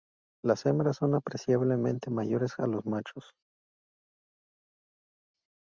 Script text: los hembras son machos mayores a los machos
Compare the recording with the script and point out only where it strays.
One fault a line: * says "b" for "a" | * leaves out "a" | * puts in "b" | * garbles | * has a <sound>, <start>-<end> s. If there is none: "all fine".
* says "las" for "los"
* says "apreciablemente" for "machos"